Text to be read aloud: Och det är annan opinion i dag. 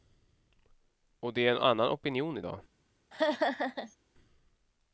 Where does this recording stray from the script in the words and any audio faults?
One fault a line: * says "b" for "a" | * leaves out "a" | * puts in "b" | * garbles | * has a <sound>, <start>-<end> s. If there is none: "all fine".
* puts in "en"
* has a laugh, 3.1-4.0 s